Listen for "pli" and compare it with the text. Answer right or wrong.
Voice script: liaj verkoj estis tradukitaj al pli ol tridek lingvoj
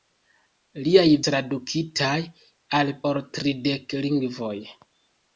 wrong